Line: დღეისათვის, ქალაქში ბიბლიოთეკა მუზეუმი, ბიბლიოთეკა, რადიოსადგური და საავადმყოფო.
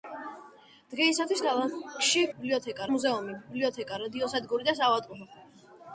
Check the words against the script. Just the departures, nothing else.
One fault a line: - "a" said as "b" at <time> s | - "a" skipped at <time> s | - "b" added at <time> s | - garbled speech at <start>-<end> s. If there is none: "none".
none